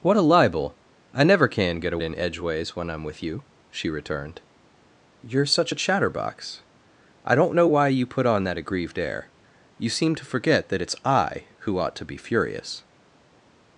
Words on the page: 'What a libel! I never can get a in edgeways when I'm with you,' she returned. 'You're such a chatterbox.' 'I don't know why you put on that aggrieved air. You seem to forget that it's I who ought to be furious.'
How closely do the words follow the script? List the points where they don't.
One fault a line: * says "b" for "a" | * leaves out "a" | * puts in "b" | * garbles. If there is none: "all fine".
all fine